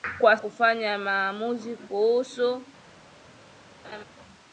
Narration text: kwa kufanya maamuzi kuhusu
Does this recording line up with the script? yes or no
yes